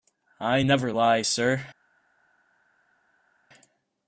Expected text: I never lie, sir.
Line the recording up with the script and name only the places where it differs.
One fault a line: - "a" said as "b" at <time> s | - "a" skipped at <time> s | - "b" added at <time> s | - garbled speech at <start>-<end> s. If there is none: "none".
none